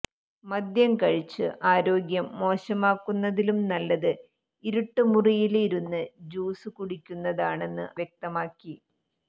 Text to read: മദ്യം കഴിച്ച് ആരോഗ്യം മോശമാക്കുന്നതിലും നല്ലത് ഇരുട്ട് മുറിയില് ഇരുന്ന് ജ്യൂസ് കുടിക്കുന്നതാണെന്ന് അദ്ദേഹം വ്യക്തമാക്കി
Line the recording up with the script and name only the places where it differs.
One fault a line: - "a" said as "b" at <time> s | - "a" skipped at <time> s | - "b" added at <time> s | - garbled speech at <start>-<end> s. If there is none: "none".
- "അദ്ദേഹം" skipped at 7.9 s